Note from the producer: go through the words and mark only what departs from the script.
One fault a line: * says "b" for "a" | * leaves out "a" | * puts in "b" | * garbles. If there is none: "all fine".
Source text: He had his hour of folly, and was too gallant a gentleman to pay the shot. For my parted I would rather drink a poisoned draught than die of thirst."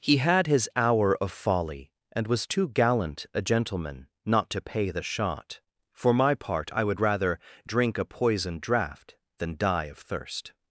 * puts in "not"
* says "part" for "parted"